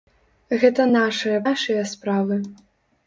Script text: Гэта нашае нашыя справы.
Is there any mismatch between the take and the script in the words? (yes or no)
no